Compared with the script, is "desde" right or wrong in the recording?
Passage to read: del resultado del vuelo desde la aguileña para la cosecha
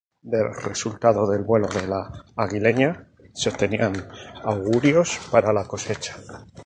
wrong